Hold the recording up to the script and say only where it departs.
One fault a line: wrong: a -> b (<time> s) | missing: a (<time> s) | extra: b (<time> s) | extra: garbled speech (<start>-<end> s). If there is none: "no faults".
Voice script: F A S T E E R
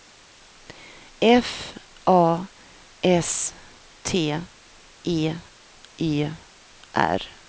no faults